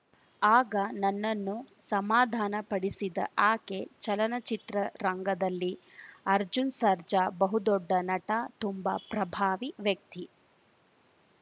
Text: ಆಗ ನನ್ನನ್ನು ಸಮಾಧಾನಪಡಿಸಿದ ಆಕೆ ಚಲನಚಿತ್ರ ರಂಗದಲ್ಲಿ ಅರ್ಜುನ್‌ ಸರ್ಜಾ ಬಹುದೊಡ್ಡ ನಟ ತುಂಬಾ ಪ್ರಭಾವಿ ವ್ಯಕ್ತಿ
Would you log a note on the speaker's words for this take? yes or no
no